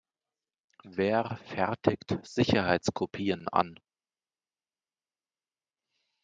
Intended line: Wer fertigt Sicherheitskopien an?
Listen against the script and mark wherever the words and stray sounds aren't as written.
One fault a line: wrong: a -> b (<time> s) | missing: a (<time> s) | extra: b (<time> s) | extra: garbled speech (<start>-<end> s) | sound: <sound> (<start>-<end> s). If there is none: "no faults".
no faults